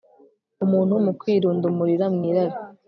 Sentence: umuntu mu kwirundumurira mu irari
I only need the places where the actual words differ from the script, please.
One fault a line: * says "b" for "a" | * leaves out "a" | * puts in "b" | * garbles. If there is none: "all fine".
all fine